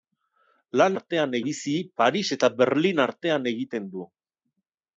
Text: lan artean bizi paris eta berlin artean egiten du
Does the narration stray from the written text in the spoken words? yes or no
no